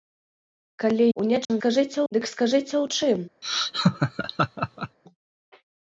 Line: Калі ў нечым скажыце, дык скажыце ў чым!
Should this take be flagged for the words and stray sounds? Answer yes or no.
yes